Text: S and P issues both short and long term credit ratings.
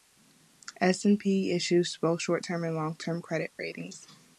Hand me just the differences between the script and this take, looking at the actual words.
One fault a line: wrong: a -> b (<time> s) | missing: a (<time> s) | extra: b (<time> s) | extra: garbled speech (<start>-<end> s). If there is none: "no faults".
extra: term (2.4 s)